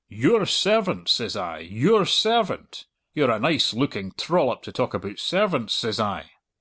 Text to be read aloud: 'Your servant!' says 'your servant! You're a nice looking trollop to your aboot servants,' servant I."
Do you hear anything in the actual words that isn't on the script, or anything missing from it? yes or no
yes